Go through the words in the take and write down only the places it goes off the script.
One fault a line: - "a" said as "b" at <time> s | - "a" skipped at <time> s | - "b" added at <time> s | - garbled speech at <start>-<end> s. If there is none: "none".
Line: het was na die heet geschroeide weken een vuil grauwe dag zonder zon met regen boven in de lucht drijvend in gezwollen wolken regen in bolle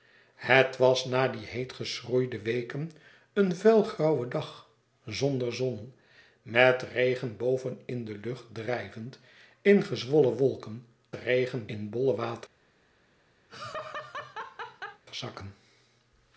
none